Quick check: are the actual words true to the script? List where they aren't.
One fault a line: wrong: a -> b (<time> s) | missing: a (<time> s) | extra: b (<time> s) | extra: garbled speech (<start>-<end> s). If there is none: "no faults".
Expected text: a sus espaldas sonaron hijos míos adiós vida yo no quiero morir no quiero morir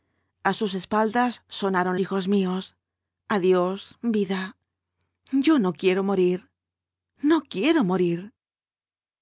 no faults